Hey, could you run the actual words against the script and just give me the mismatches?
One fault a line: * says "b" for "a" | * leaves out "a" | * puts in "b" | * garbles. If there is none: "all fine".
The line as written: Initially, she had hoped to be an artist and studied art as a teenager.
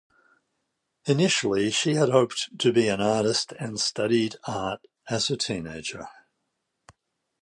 all fine